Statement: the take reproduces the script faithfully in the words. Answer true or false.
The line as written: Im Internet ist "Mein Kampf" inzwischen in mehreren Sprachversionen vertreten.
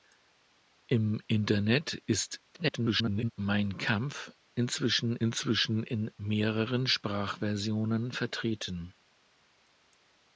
false